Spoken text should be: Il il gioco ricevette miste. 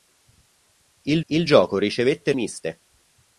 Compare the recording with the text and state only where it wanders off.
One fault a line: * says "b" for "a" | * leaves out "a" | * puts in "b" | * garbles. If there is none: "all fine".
all fine